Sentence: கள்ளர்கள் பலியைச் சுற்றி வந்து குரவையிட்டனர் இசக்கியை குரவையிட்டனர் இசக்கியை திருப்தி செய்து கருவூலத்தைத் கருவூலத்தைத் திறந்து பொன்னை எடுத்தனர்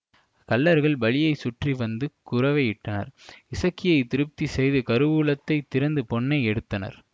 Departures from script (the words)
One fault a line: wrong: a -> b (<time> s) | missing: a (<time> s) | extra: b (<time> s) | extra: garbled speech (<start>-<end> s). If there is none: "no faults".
missing: குரவையிட்டனர் இசக்கியை (4.0 s)
missing: கருவூலத்தைத் (5.7 s)